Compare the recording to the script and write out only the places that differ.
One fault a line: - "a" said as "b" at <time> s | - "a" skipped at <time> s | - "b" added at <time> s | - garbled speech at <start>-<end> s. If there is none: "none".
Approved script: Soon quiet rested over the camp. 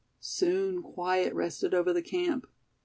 none